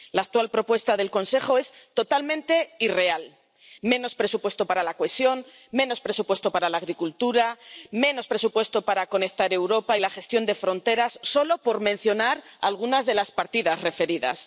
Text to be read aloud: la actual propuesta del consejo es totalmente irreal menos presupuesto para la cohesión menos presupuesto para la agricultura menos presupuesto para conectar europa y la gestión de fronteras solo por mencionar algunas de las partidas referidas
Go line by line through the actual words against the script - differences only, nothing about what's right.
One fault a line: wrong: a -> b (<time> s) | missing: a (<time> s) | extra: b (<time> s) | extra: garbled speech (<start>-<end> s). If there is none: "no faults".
no faults